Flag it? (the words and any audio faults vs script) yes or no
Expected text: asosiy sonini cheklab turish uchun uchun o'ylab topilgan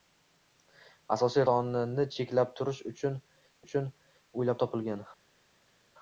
no